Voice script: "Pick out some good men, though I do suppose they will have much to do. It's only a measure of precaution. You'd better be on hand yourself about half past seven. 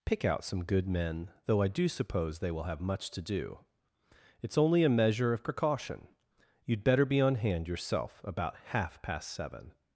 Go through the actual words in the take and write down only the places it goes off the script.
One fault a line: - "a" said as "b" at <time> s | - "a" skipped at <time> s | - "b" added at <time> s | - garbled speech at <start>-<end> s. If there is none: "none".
none